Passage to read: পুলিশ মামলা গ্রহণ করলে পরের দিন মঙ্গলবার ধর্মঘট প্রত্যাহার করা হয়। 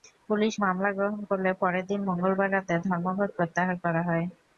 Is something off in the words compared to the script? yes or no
yes